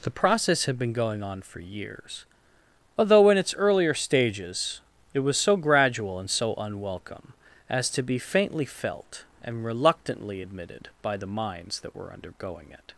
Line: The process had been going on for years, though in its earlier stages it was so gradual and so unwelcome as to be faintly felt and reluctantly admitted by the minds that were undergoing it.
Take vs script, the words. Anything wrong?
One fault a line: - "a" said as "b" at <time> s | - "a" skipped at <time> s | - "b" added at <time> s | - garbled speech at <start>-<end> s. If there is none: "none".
- "though" said as "although" at 3.0 s